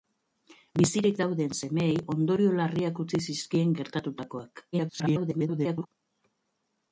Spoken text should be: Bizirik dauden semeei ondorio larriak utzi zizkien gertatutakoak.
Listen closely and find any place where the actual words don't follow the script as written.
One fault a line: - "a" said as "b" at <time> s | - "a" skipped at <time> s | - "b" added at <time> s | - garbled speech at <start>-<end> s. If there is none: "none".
- garbled speech at 4.7-5.9 s